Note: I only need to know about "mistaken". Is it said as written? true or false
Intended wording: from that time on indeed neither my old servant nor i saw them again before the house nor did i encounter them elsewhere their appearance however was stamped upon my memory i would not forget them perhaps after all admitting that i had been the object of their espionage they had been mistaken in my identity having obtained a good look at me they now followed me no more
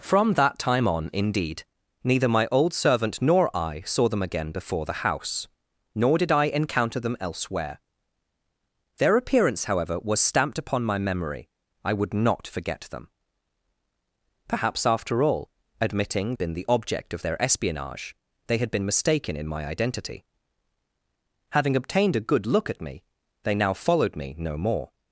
true